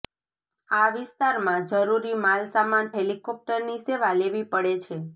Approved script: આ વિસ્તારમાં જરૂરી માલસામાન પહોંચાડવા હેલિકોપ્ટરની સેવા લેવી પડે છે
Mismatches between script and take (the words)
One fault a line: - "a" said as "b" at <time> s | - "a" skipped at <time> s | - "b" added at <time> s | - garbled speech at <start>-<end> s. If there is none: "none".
- "પહોંચાડવા" skipped at 2.9 s